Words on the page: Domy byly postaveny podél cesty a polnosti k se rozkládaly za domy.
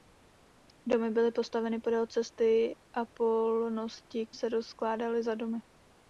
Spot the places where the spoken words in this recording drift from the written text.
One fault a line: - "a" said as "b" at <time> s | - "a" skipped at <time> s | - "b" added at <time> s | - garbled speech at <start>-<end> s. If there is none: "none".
none